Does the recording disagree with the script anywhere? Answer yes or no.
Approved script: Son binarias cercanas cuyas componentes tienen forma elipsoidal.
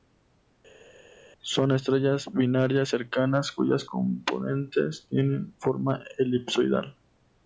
yes